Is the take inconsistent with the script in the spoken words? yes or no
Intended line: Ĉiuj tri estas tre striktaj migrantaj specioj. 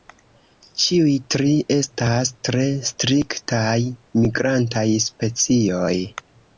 no